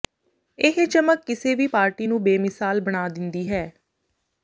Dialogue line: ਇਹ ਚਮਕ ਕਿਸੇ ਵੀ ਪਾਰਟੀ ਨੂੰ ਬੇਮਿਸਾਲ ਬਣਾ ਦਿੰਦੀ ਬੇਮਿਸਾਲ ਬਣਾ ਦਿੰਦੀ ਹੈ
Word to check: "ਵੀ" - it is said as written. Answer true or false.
true